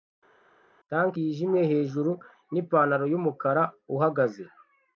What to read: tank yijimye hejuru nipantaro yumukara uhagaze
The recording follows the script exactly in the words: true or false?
true